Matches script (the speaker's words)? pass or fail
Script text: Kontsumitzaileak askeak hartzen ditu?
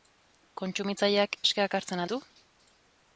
pass